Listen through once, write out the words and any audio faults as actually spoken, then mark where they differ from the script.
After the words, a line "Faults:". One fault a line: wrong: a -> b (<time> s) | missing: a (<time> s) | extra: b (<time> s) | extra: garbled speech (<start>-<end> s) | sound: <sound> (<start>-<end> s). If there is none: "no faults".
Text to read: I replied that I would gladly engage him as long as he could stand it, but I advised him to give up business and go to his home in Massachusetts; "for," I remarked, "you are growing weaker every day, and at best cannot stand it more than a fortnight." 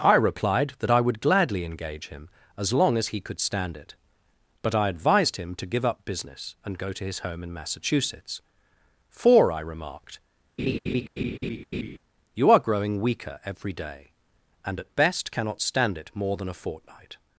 I replied that I would gladly engage him as long as he could stand it, but I advised him to give up business and go to his home in Massachusetts; "for," I remarked, "you are growing weaker every day, and at best cannot stand it more than a fortnight."
Faults:
sound: laugh (10.6-12.0 s)